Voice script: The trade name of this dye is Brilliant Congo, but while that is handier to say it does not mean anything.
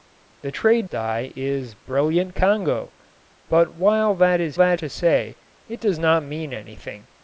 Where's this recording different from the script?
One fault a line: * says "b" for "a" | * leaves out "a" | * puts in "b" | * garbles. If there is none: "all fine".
* leaves out "name of this"
* says "that" for "handier"